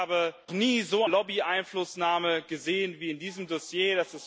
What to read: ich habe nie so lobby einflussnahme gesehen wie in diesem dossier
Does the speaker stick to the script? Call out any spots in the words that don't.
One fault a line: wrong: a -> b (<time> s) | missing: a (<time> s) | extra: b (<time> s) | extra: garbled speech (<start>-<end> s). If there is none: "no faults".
no faults